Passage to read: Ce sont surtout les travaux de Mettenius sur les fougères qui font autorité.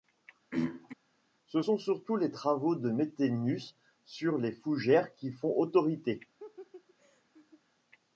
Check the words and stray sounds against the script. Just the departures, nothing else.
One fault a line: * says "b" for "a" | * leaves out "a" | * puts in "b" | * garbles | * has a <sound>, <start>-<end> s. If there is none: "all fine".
* has a throat clearing, 0.5-0.9 s
* has a laugh, 6.4-7.6 s